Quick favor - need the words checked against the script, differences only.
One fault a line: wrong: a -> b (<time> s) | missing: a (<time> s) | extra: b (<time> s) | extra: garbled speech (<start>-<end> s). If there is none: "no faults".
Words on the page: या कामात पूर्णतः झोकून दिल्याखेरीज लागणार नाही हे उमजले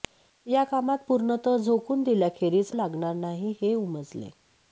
no faults